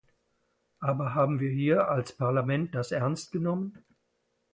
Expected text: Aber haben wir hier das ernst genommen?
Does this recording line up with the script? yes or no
no